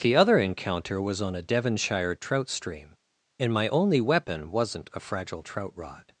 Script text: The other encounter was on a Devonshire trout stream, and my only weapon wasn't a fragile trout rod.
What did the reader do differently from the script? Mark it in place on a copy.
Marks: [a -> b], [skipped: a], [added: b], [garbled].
The other encounter was on a Devonshire trout stream, and my only weapon wasn't a fragile trout rod.